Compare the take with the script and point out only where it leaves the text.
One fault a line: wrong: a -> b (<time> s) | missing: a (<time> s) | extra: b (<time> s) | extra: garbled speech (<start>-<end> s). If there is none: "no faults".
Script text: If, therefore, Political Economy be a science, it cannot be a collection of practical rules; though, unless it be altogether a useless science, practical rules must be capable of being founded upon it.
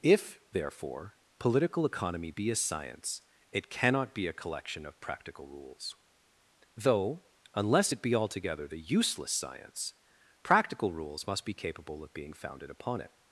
wrong: a -> the (8.7 s)